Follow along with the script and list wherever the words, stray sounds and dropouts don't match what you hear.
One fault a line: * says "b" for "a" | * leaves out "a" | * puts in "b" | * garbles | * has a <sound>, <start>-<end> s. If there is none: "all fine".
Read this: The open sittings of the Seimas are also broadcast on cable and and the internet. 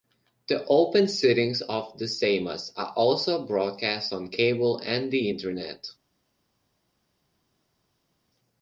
* leaves out "and"